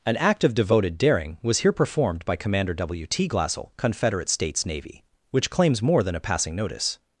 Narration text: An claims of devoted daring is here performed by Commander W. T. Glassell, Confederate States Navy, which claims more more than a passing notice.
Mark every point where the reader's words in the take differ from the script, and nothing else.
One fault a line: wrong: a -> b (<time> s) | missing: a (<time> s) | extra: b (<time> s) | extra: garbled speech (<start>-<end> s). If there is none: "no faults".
wrong: claims -> act (0.2 s)
wrong: is -> was (1.4 s)
missing: more (6.0 s)